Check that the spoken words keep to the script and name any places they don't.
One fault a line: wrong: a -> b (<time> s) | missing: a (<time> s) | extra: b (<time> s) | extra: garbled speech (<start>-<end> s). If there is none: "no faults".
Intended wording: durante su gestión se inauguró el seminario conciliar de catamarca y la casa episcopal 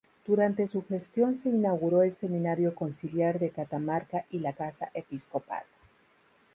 no faults